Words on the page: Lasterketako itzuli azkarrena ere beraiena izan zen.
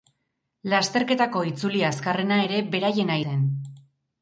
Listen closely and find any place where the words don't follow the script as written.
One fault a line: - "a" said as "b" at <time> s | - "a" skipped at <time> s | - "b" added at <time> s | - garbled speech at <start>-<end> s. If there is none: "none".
- "izan" skipped at 3.2 s